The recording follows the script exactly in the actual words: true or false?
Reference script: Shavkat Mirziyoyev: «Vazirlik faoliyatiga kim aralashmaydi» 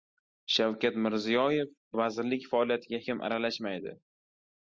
true